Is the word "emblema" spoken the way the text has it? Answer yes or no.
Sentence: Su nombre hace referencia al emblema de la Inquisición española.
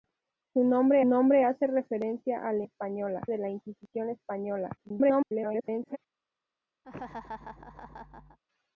no